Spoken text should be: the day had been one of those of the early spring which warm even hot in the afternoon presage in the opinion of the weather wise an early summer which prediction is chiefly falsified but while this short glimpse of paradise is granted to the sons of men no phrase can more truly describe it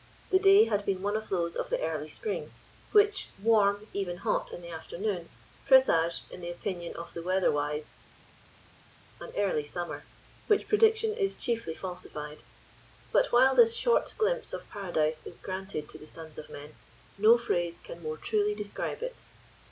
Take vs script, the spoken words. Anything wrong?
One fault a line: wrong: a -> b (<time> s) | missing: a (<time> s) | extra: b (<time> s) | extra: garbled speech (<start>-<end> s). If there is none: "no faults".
no faults